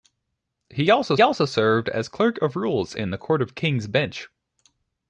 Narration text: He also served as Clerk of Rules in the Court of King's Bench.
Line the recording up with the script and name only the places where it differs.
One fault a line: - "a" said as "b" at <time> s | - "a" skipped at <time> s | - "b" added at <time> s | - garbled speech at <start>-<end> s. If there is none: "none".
- "also" added at 1.2 s